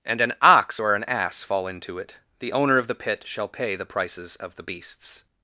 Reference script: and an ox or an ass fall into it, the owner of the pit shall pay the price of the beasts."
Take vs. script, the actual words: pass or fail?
fail